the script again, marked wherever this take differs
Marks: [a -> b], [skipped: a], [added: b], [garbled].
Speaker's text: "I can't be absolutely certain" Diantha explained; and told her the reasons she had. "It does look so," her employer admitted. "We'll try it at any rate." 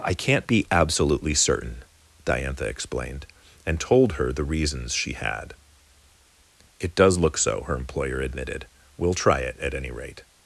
"I can't be absolutely certain" Diantha explained; and told her the reasons she had. "It does look so," her employer admitted. "We'll try it at any rate."